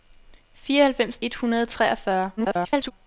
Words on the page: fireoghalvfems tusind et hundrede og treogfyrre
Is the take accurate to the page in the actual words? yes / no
no